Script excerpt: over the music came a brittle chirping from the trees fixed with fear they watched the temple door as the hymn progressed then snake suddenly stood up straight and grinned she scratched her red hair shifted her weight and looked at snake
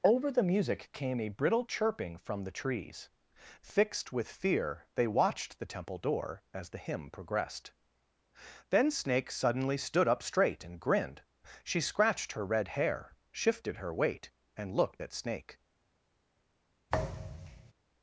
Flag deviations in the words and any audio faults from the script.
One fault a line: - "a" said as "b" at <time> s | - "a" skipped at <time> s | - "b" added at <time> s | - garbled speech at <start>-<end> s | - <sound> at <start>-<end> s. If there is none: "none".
- thud at 16.9-17.7 s